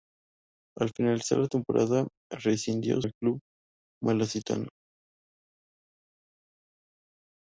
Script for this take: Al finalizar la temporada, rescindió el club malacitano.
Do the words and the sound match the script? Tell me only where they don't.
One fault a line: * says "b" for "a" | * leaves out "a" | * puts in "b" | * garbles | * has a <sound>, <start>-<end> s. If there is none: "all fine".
all fine